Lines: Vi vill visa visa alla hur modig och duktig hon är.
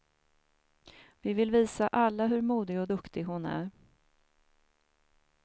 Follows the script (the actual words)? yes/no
no